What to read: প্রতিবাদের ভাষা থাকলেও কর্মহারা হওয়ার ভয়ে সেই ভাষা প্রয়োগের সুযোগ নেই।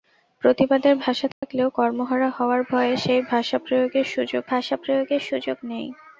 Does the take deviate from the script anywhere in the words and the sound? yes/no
yes